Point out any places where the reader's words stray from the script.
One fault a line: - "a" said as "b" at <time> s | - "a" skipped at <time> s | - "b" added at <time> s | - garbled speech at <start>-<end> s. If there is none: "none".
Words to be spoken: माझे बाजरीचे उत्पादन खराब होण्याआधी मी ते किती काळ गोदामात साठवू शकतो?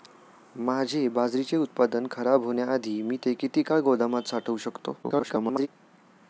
- garbled speech at 5.0-5.7 s